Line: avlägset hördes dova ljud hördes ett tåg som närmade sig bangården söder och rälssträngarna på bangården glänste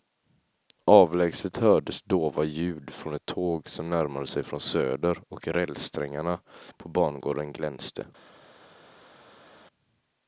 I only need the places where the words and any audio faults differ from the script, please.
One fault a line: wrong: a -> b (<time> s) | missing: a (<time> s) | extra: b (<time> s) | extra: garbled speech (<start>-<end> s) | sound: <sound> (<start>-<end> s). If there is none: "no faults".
wrong: hördes -> från (2.9 s)
wrong: bangården -> från (4.4 s)